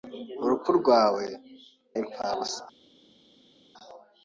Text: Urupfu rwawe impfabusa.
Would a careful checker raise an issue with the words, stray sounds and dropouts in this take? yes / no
no